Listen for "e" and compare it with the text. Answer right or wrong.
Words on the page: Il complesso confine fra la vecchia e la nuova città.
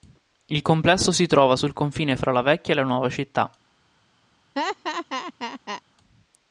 right